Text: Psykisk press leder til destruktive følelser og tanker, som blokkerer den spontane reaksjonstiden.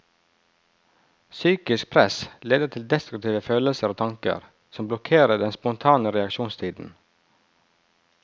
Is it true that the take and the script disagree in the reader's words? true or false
false